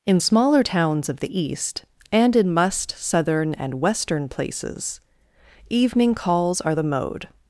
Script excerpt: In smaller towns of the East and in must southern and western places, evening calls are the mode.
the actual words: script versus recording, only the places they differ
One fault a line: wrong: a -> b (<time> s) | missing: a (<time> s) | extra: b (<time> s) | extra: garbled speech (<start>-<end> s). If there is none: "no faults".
no faults